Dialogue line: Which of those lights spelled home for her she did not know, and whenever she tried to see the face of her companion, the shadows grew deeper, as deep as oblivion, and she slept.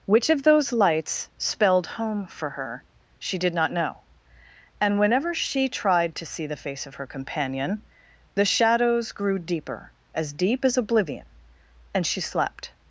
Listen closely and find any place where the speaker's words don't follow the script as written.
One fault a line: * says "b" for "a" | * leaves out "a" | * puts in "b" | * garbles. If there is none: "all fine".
all fine